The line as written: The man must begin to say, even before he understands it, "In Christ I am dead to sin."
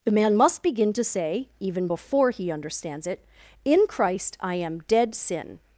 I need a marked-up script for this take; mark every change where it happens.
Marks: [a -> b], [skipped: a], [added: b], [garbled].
The man must begin to say, even before he understands it, "In Christ I am dead [skipped: to] sin."